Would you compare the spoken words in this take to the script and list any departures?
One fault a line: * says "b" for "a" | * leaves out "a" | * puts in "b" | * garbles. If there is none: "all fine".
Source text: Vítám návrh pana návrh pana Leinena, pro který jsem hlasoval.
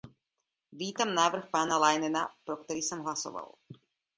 * leaves out "návrh pana"